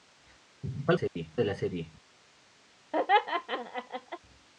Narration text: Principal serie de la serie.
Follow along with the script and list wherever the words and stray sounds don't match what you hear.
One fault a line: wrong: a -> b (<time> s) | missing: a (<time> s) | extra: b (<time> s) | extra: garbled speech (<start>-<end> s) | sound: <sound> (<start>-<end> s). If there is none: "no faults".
sound: dropout (1.1-1.2 s)
sound: laugh (2.9-4.2 s)